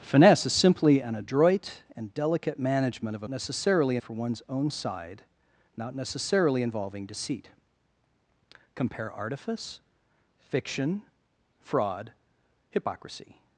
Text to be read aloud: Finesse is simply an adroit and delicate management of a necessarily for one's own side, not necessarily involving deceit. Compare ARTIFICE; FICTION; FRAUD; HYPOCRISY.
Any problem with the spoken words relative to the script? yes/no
no